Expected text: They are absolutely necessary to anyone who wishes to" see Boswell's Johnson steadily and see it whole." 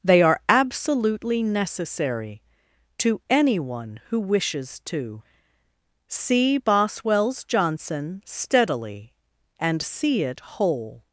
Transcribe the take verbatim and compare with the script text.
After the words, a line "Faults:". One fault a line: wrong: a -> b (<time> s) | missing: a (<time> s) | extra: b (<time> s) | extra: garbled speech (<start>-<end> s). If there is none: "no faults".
They are absolutely necessary to anyone who wishes to" see Boswell's Johnson steadily and see it whole."
Faults:
no faults